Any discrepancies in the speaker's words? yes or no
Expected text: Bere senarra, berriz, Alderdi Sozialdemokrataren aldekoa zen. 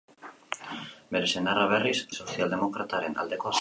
yes